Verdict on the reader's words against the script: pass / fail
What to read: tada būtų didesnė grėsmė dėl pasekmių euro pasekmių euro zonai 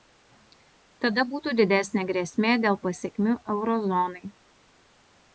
fail